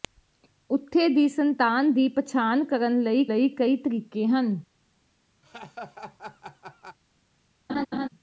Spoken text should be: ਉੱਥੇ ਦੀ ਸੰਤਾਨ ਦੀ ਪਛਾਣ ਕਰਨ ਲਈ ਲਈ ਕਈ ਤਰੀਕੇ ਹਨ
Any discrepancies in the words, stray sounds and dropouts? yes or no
yes